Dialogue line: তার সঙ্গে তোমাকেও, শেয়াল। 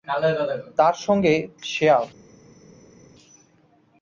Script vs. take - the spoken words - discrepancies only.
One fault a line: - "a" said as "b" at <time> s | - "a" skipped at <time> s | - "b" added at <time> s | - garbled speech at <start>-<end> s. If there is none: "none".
- "তোমাকেও" skipped at 1.3 s